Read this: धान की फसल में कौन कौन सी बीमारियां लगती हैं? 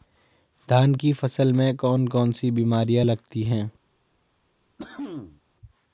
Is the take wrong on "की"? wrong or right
right